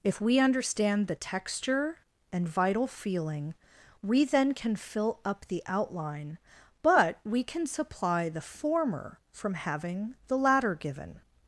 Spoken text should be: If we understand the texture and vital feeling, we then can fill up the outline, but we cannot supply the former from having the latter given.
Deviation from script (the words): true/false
true